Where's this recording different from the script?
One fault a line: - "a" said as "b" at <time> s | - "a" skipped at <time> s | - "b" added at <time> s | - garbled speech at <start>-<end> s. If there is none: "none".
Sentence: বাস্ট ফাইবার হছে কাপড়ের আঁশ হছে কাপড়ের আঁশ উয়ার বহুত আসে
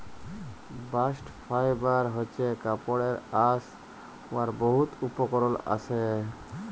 - "হছে কাপড়ের আঁশ" skipped at 3.6 s
- "উপকরল" added at 5.1 s